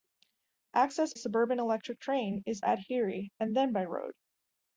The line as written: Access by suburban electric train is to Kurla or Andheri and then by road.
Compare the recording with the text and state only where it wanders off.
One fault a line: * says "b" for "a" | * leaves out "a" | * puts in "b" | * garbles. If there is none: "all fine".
* leaves out "by"
* leaves out "to Kurla or"